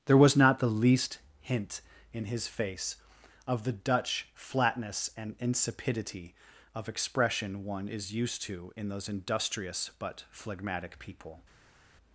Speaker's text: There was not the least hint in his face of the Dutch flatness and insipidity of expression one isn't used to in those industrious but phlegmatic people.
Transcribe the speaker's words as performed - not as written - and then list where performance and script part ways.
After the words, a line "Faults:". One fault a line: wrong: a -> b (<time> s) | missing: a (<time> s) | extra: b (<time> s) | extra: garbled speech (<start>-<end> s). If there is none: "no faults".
There was not the least hint in his face of the Dutch flatness and insipidity of expression one is used to in those industrious but phlegmatic people.
Faults:
wrong: isn't -> is (7.9 s)